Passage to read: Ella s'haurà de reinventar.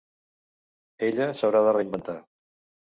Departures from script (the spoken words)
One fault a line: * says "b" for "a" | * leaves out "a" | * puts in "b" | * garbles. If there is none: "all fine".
all fine